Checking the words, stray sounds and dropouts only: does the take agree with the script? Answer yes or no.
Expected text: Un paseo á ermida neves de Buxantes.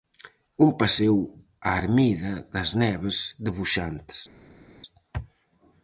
no